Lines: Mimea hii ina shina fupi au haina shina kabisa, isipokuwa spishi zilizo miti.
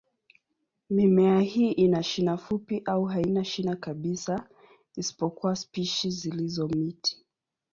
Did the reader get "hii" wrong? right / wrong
right